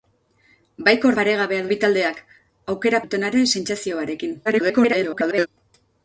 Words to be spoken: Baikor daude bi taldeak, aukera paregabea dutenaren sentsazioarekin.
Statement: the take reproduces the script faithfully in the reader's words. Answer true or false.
false